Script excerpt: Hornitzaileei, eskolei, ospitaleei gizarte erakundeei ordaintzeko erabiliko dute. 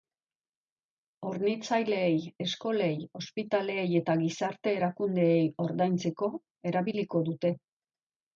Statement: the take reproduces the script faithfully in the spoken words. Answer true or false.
false